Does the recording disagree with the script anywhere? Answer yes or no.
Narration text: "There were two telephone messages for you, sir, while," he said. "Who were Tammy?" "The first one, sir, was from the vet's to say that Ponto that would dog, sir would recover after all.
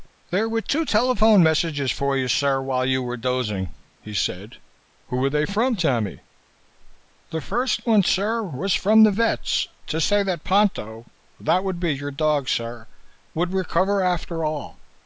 yes